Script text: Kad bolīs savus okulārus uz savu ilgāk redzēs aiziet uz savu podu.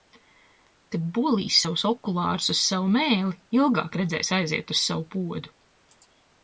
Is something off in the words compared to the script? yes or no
yes